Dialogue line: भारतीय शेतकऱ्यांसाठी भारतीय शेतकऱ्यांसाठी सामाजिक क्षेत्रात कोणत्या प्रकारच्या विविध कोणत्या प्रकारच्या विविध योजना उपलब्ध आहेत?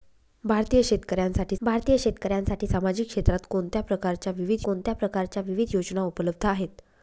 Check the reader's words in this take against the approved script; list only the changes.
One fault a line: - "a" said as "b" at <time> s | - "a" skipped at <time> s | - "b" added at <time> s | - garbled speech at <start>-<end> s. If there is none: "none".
none